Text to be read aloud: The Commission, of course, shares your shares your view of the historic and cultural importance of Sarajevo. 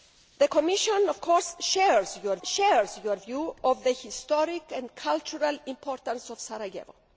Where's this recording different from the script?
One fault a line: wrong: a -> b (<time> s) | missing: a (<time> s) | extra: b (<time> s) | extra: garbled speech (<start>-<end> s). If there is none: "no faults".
no faults